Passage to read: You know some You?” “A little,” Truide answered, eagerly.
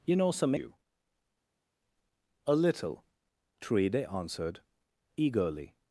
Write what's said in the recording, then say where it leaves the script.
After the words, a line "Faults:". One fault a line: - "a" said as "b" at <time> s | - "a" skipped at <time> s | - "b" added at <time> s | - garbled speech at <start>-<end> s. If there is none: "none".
You know some You?” “A little,” Truide answered, eagerly.
Faults:
none